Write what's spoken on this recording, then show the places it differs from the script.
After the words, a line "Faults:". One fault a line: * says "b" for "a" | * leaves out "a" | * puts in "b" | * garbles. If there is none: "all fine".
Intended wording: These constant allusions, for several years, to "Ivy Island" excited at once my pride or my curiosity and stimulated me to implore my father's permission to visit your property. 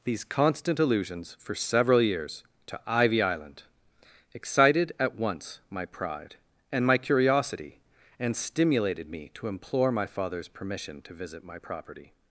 These constant allusions, for several years, to "Ivy Island" excited at once my pride and my curiosity and stimulated me to implore my father's permission to visit my property.
Faults:
* says "and" for "or"
* says "my" for "your"